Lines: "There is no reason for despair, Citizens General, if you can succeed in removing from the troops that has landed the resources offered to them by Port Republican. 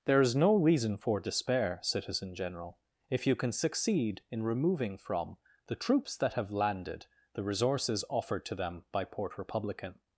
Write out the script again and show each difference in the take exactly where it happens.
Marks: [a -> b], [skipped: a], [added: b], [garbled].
"There is no reason for despair, [Citizens -> Citizen] General, if you can succeed in removing from the troops that [has -> have] landed the resources offered to them by Port Republican.